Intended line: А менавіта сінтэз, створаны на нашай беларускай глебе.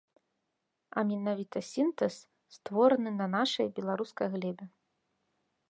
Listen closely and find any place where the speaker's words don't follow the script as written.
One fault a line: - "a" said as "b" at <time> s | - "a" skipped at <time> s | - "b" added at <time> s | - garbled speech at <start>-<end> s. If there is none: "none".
none